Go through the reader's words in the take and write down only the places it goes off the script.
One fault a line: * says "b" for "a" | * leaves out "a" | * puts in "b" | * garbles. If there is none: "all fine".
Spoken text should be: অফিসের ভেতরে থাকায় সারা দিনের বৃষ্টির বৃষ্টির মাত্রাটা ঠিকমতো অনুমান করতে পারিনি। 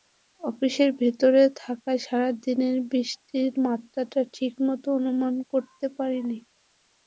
* leaves out "বৃষ্টির"